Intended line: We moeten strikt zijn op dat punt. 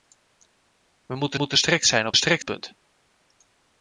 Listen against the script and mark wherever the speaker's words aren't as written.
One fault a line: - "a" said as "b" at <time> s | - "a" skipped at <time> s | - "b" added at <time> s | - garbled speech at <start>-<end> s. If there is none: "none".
- "moeten" added at 1.3 s
- "dat" said as "strikt" at 2.1 s